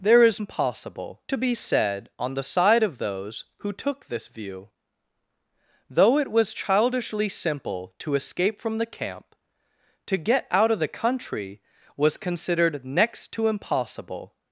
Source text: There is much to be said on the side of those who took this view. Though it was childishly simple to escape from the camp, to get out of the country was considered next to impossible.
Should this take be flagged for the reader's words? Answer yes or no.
yes